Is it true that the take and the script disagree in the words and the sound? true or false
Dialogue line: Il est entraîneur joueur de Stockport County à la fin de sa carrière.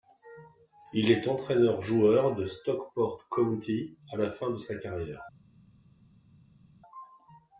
false